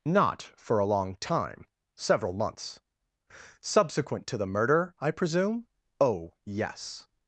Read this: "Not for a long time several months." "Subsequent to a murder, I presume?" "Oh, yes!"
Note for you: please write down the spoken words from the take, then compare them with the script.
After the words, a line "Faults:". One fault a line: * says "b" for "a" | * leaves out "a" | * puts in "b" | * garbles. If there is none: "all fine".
"Not for a long time several months." "Subsequent to the murder, I presume?" "Oh, yes!"
Faults:
* says "the" for "a"